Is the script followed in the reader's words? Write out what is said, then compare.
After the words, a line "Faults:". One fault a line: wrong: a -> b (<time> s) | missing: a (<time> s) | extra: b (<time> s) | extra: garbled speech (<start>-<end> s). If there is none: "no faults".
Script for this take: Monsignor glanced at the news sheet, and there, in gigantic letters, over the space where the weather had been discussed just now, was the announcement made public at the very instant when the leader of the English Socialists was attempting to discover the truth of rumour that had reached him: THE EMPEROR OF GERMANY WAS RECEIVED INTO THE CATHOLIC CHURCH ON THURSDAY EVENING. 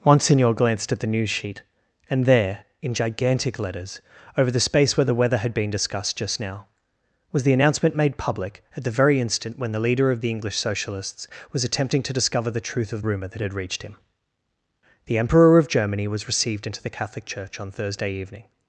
Monsignor glanced at the news sheet, and there, in gigantic letters, over the space where the weather had been discussed just now, was the announcement made public at the very instant when the leader of the English Socialists was attempting to discover the truth of rumour that had reached him: THE EMPEROR OF GERMANY WAS RECEIVED INTO THE CATHOLIC CHURCH ON THURSDAY EVENING.
Faults:
no faults